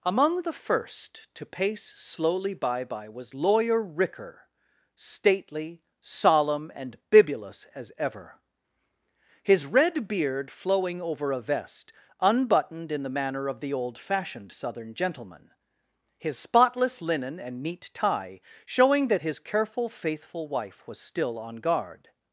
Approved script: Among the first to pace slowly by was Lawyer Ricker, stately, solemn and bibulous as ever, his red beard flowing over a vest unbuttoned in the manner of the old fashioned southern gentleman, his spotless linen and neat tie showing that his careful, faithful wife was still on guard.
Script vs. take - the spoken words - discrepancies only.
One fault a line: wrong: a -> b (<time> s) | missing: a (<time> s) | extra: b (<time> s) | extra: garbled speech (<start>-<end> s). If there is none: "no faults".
extra: by (2.8 s)